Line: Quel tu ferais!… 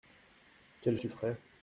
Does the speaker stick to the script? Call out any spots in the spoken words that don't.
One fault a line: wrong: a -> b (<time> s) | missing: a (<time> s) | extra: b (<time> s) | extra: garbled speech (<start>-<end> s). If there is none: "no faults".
no faults